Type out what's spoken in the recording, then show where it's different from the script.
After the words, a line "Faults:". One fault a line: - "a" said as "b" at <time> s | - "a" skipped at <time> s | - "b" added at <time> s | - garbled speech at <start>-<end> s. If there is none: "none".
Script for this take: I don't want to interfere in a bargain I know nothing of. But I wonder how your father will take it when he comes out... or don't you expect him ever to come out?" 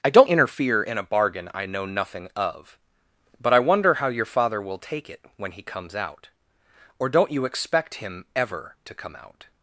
I don't to interfere in a bargain I know nothing of. But I wonder how your father will take it when he comes out... or don't you expect him ever to come out?"
Faults:
- "want" skipped at 0.3 s